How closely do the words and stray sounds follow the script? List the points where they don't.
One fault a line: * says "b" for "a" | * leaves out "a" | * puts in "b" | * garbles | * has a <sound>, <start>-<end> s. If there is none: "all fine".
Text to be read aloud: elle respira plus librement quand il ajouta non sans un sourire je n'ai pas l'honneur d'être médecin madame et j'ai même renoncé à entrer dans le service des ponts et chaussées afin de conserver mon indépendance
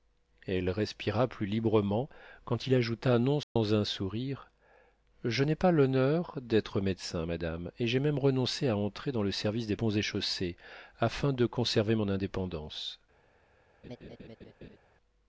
* has a dropout, 3.4-3.6 s
* has a laugh, 13.8-14.8 s